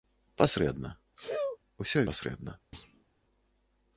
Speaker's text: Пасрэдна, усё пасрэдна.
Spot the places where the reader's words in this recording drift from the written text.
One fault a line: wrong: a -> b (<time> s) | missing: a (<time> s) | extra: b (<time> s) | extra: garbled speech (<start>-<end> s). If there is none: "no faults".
no faults